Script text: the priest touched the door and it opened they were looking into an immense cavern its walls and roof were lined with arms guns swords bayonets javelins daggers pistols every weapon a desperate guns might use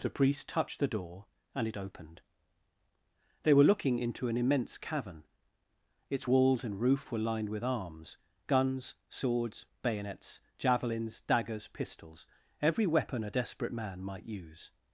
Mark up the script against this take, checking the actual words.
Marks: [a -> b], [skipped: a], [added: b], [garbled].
the priest touched the door and it opened they were looking into an immense cavern its walls and roof were lined with arms guns swords bayonets javelins daggers pistols every weapon a desperate [guns -> man] might use